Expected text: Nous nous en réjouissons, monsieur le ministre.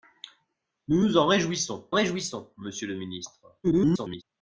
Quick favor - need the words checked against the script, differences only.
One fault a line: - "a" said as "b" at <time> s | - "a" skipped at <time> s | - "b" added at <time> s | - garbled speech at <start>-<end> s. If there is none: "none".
- "réjouissons" added at 1.9 s
- garbled speech at 3.6-4.2 s